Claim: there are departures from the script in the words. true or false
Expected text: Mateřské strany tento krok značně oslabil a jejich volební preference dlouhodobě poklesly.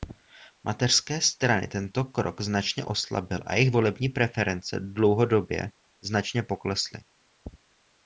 true